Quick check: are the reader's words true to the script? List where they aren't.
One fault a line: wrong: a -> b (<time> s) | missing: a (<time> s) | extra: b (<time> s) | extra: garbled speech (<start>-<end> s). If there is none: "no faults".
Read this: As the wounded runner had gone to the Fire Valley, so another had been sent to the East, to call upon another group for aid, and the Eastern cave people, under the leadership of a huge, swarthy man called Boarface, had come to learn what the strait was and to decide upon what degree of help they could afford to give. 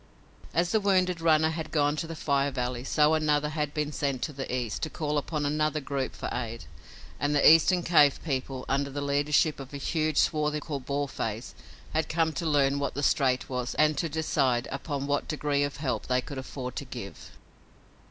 missing: man (10.6 s)